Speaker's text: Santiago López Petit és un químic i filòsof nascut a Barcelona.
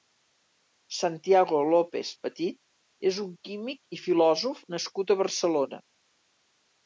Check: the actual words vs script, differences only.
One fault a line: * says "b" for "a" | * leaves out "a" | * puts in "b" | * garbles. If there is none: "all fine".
all fine